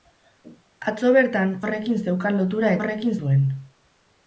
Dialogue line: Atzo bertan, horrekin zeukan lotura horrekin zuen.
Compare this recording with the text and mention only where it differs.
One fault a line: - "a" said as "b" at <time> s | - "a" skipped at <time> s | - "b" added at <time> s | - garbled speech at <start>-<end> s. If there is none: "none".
none